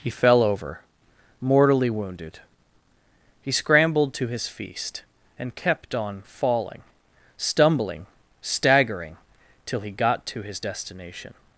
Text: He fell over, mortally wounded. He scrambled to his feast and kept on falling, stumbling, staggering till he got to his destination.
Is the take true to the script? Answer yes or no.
yes